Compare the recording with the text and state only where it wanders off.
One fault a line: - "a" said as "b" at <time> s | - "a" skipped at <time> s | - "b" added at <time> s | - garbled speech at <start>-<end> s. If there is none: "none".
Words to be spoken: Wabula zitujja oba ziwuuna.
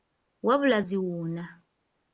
- "zitujja oba" skipped at 0.8 s